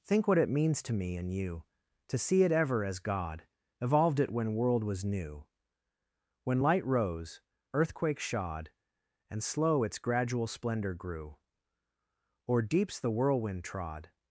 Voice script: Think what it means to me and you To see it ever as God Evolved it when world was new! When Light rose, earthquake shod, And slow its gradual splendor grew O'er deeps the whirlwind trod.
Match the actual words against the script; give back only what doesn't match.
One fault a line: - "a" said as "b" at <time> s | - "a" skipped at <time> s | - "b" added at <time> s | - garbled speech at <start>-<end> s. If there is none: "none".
none